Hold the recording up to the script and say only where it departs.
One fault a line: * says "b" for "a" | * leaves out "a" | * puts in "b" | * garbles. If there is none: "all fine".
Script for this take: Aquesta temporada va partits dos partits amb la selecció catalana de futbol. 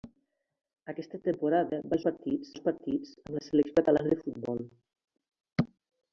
all fine